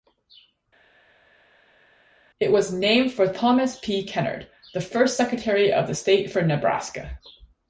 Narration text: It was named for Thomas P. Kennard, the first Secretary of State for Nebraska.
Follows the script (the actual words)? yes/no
yes